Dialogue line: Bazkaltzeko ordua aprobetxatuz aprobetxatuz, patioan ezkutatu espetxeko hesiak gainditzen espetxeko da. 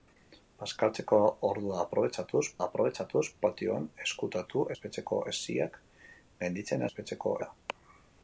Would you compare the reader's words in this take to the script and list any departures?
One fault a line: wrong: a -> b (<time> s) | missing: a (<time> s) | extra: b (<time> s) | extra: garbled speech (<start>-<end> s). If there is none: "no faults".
no faults